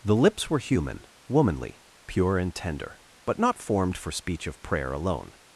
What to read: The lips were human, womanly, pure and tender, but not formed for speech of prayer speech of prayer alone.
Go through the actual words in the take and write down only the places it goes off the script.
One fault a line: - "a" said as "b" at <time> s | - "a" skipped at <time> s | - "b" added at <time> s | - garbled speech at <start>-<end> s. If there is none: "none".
- "speech of prayer" skipped at 4.9 s